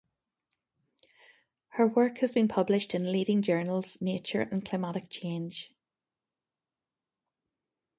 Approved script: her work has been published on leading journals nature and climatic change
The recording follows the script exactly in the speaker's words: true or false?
false